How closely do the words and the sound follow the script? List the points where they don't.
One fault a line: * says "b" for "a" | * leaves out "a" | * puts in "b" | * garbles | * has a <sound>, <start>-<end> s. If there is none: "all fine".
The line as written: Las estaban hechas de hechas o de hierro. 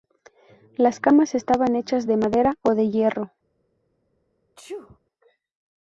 * puts in "camas"
* says "madera" for "hechas"
* has a sneeze, 4.6-5.0 s